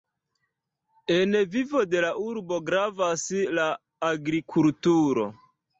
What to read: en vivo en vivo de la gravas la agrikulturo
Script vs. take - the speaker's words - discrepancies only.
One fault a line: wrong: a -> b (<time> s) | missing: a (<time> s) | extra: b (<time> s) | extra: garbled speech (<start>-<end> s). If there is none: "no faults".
missing: en vivo (1.8 s)
extra: urbo (2.2 s)